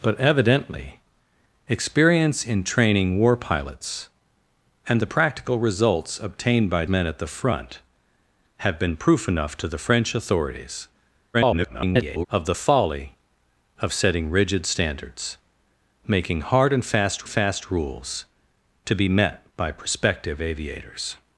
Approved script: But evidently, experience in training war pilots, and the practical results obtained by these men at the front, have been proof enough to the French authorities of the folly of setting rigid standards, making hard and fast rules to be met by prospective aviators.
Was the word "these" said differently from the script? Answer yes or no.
yes